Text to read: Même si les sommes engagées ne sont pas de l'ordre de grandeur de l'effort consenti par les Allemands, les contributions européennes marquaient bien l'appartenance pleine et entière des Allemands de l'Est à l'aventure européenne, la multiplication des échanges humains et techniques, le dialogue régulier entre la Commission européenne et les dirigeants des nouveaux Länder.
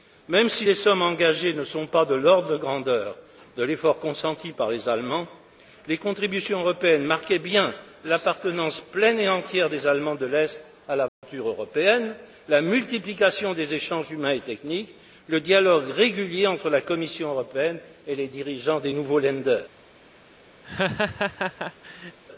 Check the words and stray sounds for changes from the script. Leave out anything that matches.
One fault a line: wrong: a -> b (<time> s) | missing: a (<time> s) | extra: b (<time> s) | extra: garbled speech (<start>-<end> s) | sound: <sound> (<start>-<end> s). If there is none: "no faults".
sound: dropout (11.1-11.2 s)
sound: laugh (20.6-22.2 s)